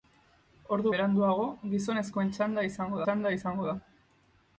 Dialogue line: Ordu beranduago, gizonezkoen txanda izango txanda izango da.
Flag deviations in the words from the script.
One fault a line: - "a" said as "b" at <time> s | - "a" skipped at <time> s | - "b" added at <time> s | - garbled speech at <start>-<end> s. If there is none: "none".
none